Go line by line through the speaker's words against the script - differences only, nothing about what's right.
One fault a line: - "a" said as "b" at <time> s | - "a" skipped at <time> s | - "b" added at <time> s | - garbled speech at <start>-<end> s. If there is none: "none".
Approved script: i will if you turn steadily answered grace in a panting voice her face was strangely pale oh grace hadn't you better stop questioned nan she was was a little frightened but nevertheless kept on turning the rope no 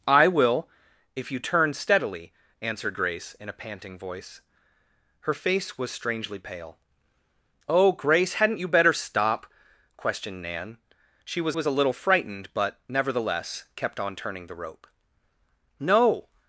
none